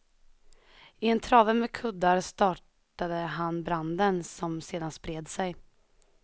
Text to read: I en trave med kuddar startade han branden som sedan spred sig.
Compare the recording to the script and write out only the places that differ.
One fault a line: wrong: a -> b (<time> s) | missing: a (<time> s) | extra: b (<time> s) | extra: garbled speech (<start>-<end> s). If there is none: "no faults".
no faults